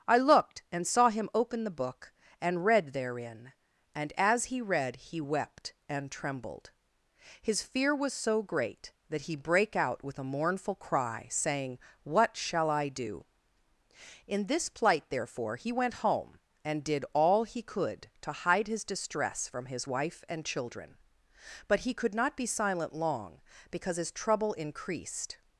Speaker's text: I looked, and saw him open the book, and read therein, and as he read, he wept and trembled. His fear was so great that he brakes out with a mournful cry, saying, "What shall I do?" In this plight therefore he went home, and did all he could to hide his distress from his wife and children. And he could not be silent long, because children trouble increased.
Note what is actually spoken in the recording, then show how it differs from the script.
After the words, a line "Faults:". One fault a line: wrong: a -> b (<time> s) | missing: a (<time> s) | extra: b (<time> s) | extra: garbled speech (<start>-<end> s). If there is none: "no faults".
I looked, and saw him open the book, and read therein, and as he read, he wept and trembled. His fear was so great that he brake out with a mournful cry, saying, "What shall I do?" In this plight therefore he went home, and did all he could to hide his distress from his wife and children. But he could not be silent long, because his trouble increased.
Faults:
wrong: brakes -> brake (9.4 s)
wrong: And -> But (21.7 s)
wrong: children -> his (24.0 s)